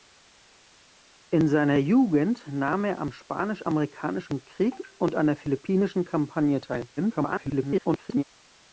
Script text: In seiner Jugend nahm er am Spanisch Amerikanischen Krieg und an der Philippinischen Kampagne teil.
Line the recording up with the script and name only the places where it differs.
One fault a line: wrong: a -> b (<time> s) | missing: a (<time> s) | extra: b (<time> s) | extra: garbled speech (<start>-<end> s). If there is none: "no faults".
extra: garbled speech (7.0-8.2 s)